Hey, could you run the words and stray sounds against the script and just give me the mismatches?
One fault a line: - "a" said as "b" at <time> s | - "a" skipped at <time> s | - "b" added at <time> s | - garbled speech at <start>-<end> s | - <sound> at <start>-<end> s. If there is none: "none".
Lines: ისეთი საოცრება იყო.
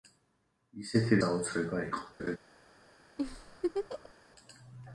- laugh at 2.2-2.4 s
- laugh at 3.2-4.1 s